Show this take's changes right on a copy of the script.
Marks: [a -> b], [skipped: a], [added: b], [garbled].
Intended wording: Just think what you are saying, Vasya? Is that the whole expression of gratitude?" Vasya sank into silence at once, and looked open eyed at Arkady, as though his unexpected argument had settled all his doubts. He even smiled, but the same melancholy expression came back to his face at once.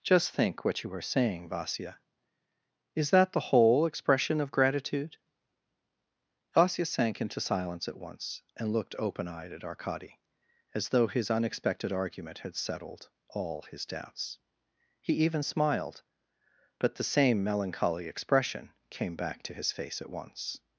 Just think what you are saying, Vasya? Is that the whole expression of gratitude?" Vasya sank into silence at once, and looked open eyed at Arkady, as though his unexpected argument had settled all his doubts. He even smiled, but the same melancholy expression came back to his face at once.